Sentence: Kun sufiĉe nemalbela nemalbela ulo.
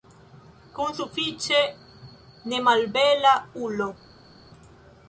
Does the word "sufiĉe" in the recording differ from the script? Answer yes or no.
no